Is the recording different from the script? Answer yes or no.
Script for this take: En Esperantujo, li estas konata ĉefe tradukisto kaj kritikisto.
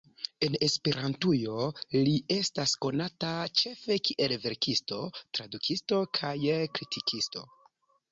yes